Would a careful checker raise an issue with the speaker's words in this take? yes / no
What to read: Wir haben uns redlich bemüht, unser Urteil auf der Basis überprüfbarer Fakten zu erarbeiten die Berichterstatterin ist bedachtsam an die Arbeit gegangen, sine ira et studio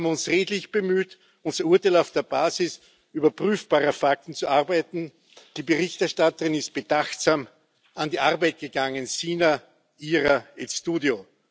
no